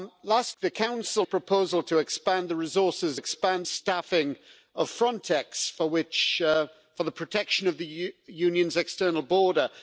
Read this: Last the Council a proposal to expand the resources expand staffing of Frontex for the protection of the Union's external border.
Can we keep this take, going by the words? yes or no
yes